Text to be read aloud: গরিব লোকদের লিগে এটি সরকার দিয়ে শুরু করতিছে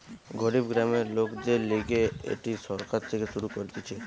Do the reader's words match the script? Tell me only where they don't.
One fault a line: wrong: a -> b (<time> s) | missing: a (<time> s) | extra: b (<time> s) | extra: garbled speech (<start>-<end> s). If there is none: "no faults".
extra: গ্রামের (0.7 s)
wrong: দিয়ে -> থেকে (3.1 s)